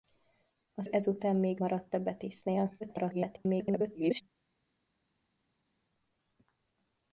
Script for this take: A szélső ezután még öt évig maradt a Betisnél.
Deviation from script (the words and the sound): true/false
true